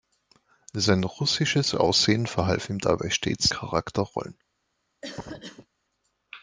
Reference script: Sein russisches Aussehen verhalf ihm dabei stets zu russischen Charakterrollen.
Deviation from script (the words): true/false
true